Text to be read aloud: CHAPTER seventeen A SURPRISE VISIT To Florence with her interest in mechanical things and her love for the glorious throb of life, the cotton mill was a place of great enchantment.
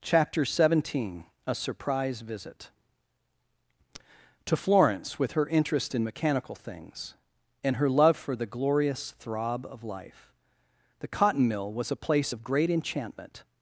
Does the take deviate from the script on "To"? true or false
false